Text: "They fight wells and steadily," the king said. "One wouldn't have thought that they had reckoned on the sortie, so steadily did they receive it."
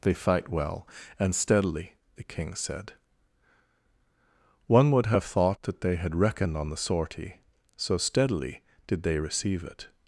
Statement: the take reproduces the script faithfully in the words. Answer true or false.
false